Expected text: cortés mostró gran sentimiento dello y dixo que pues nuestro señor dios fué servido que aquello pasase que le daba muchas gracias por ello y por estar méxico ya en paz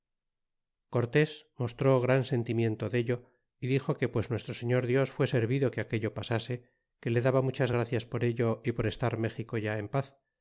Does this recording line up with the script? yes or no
yes